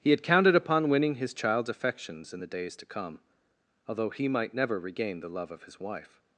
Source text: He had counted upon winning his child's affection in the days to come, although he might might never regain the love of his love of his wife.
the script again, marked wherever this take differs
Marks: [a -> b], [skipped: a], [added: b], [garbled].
He had counted upon winning his child's [affection -> affections] in the days to come, although he might [skipped: might] never regain the love of his [skipped: love of his] wife.